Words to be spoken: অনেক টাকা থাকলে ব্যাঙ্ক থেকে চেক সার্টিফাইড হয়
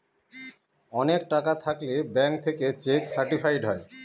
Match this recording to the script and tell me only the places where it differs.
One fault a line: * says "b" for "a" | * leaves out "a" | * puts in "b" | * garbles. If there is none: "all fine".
all fine